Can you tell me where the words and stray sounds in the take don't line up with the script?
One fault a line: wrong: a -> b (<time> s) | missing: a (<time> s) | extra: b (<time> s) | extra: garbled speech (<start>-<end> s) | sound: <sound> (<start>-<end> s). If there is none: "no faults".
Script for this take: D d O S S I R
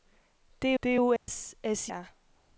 sound: dropout (1.2-1.3 s)